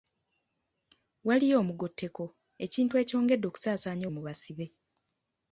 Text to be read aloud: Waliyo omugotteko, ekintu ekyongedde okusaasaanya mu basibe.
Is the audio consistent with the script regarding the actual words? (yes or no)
yes